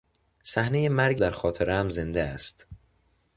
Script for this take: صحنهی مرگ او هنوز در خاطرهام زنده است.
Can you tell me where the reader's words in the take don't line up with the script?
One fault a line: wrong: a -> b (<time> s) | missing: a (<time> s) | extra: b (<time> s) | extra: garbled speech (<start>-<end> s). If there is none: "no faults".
missing: او هنوز (1.2 s)